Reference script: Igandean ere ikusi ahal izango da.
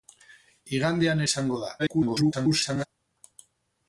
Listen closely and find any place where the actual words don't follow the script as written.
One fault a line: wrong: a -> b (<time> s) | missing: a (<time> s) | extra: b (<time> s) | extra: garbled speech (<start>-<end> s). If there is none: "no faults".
missing: ere ikusi ahal (1.2 s)
extra: garbled speech (1.8-2.9 s)